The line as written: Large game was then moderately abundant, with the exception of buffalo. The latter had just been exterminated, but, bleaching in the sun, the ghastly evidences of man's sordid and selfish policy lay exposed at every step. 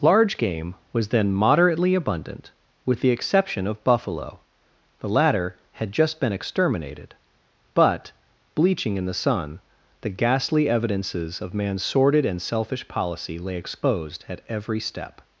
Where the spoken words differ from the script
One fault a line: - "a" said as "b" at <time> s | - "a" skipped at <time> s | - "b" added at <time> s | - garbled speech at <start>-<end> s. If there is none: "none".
none